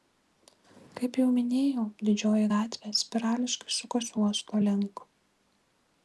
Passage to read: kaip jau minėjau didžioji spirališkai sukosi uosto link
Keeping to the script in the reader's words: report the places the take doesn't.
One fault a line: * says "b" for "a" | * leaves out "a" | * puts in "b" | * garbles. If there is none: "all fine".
* puts in "gatvė"